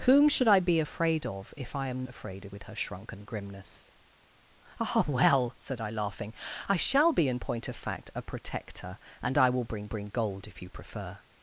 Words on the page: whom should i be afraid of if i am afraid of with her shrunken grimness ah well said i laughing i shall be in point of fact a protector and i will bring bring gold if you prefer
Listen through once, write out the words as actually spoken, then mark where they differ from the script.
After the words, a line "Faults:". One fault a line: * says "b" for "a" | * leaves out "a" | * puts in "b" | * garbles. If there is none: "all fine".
whom should i be afraid of if i am afraid of with her shrunken grimness ah well said i laughing i shall be in point of fact a protector and i will bring bring gold if you prefer
Faults:
all fine